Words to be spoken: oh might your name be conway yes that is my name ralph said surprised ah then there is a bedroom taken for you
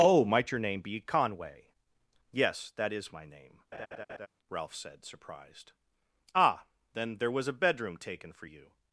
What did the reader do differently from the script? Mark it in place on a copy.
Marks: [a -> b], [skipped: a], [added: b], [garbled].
oh might your name be conway yes that is my name ralph said surprised ah then there [is -> was] a bedroom taken for you